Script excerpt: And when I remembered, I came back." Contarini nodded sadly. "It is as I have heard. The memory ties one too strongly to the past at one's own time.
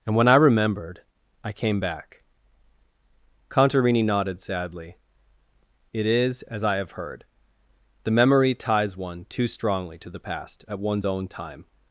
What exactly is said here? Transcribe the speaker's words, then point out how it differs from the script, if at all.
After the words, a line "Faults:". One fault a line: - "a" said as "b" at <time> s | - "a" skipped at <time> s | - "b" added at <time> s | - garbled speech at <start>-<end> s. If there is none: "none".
And when I remembered, I came back." Contarini nodded sadly. "It is as I have heard. The memory ties one too strongly to the past at one's own time.
Faults:
none